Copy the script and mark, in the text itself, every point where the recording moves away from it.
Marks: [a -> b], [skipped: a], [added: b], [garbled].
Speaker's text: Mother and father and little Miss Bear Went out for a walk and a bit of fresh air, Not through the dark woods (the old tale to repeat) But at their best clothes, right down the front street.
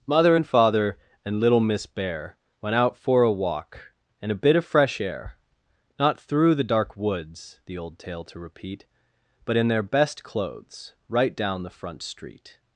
Mother and father and little Miss Bear Went out for a walk and a bit of fresh air, Not through the dark woods (the old tale to repeat) But [at -> in] their best clothes, right down the front street.